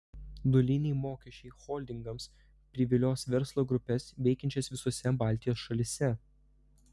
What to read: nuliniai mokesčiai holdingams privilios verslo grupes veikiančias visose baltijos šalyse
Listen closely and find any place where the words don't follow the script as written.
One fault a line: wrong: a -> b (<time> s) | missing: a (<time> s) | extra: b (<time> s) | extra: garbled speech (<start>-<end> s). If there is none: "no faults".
no faults